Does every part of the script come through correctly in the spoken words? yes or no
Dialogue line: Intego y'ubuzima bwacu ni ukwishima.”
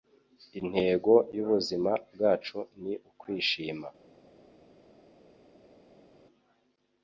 yes